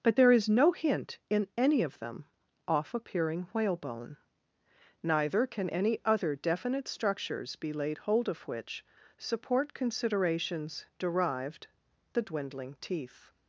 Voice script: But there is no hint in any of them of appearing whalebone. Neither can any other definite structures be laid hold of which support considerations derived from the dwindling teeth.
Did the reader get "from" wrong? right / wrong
wrong